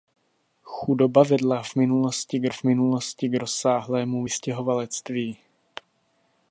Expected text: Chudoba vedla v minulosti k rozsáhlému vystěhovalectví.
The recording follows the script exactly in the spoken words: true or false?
false